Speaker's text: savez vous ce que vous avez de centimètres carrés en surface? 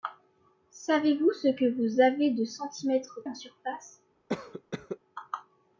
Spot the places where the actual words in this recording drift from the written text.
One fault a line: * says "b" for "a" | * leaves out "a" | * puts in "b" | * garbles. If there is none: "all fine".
* leaves out "carrés"